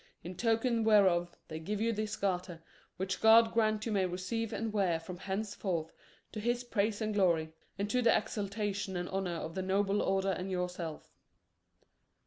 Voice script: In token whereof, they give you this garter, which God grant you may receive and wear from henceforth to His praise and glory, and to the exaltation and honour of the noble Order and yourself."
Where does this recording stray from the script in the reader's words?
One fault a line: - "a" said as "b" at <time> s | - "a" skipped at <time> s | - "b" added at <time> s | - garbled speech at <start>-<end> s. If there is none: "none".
none